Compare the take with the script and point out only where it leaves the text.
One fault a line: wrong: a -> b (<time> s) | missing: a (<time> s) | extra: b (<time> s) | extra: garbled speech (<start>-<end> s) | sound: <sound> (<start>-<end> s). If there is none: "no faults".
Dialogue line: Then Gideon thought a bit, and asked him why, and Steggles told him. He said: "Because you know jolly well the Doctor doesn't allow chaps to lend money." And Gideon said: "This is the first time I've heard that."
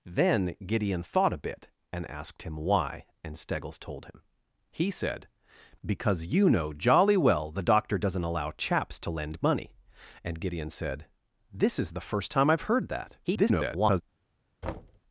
extra: garbled speech (13.2-14.0 s)
sound: thud (14.6-15.0 s)